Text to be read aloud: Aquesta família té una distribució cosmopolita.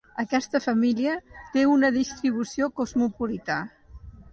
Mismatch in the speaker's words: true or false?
false